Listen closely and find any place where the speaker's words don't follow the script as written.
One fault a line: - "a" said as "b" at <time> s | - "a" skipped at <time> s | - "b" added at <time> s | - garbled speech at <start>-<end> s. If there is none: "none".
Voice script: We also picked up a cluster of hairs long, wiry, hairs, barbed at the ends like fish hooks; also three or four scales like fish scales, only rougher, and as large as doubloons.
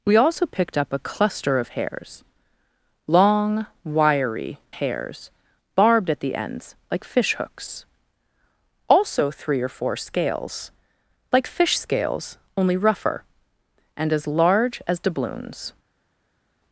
none